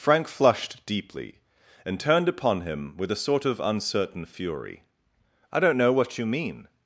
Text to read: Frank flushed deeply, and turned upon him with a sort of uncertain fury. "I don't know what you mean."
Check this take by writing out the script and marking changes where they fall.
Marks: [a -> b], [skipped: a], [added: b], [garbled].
Frank flushed deeply, and turned upon him with a sort of uncertain fury. "I don't know what you mean."